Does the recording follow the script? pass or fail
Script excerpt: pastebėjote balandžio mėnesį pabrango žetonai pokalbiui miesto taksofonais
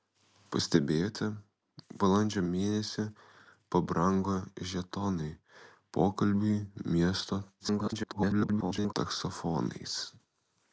fail